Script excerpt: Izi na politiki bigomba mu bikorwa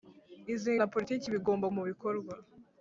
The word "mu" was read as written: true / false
true